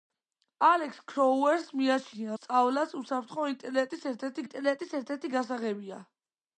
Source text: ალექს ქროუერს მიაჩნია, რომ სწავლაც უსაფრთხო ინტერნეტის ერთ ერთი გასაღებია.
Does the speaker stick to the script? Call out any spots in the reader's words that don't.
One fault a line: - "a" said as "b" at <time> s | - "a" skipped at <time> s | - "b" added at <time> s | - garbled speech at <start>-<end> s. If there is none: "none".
- "რომ" skipped at 2.4 s
- "ინტერნეტის ერთ ერთი" added at 4.5 s